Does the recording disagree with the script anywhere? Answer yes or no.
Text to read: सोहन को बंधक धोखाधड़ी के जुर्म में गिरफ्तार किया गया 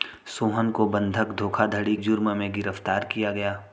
yes